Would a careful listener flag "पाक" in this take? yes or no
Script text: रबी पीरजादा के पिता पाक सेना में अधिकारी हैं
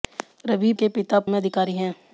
yes